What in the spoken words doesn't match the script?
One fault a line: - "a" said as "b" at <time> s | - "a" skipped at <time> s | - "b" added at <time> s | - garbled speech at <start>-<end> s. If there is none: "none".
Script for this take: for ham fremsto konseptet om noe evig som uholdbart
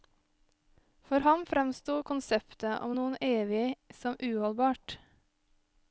none